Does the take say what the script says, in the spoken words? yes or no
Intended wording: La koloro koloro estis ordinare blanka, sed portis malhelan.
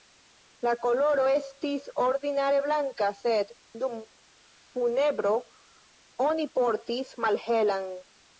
no